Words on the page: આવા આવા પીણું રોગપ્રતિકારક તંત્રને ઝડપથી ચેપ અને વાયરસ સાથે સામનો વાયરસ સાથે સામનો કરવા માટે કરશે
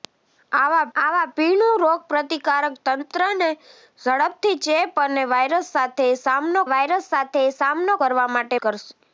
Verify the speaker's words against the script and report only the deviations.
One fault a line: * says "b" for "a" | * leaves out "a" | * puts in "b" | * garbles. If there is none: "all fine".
all fine